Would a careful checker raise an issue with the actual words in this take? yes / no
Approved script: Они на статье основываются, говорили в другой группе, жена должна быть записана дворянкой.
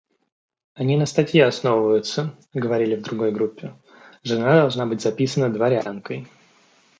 no